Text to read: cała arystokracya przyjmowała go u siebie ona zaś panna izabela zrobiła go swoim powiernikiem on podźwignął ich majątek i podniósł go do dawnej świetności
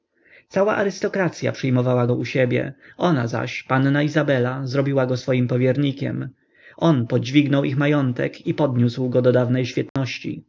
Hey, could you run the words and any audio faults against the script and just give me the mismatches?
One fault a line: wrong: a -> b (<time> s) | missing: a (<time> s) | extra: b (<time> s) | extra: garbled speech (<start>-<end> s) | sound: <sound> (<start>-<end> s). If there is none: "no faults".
sound: dropout (9.9-10.0 s)